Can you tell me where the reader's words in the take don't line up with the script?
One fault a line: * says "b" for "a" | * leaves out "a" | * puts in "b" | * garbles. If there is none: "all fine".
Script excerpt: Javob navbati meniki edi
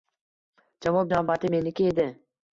all fine